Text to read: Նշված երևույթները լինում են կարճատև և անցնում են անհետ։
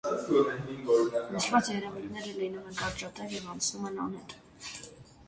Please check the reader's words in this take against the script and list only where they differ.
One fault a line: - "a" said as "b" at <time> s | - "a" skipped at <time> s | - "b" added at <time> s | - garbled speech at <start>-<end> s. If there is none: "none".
none